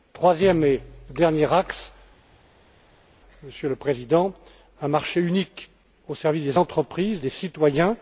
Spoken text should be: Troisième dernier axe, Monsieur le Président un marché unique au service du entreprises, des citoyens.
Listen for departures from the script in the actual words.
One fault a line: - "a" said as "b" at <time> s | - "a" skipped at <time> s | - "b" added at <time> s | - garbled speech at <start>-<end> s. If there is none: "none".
- "et" added at 0.6 s
- "du" said as "des" at 6.4 s